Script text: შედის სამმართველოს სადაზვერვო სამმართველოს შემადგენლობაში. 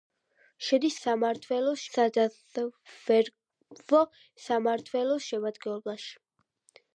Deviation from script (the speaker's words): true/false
false